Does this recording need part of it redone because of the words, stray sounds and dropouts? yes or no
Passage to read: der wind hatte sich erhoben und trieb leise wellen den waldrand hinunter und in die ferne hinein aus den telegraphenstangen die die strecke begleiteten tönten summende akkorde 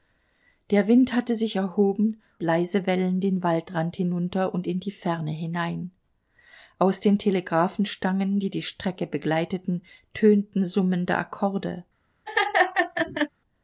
yes